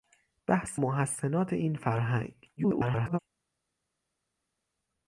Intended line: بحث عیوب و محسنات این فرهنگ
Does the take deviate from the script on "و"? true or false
true